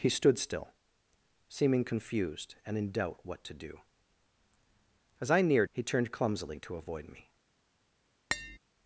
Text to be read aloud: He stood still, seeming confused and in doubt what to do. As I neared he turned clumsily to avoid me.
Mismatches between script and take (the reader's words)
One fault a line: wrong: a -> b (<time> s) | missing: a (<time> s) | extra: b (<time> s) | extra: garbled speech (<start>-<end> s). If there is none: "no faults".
no faults